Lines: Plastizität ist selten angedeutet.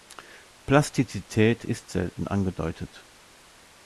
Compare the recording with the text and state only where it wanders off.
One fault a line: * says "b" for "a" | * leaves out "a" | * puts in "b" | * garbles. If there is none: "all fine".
all fine